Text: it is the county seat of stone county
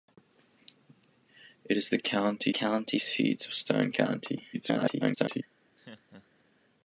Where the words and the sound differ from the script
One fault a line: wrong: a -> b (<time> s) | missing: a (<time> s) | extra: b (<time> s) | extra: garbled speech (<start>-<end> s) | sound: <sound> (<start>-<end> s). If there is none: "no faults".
extra: county (2.5 s)
extra: garbled speech (4.5-5.4 s)
sound: laugh (5.8-6.4 s)